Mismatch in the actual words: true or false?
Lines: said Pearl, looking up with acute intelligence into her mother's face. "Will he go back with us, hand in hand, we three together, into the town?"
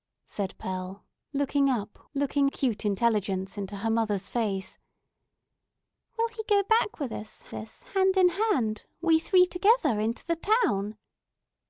true